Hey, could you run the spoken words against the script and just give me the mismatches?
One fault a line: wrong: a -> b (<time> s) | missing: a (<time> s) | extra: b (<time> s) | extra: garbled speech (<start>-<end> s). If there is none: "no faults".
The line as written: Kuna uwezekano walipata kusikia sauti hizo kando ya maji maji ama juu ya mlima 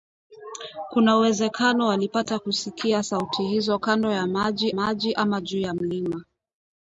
no faults